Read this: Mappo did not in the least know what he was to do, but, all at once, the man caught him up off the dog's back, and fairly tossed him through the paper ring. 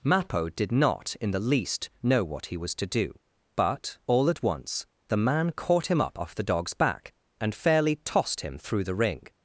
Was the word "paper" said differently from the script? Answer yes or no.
yes